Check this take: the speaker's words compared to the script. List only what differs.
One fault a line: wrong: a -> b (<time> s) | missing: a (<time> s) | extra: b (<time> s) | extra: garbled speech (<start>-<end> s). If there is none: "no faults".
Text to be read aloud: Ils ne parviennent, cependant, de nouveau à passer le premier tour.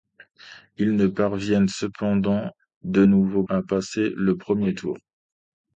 no faults